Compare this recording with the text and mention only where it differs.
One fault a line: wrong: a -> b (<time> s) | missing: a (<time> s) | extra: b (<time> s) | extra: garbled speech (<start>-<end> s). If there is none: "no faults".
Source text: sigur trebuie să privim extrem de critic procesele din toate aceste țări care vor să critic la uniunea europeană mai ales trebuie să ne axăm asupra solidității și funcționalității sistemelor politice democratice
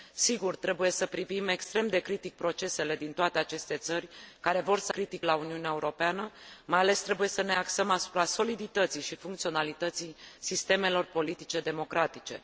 no faults